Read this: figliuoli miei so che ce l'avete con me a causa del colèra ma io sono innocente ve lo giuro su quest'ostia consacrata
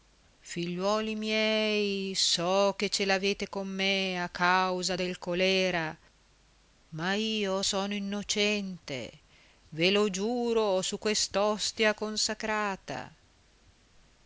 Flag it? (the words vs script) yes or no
no